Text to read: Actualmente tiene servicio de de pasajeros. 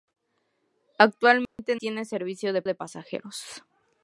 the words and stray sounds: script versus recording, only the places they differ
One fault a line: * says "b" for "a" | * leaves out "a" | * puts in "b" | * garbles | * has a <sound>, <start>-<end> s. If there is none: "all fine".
* has a dropout, 1.5-1.6 s